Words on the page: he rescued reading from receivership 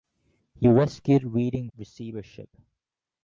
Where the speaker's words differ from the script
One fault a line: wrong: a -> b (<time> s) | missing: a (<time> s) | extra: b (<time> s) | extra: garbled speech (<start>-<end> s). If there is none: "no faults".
missing: from (1.7 s)